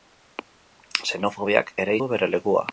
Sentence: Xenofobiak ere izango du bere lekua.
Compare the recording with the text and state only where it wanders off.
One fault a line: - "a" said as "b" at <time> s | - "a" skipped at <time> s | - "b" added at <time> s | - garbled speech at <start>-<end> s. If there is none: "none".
- "izango" skipped at 2.0 s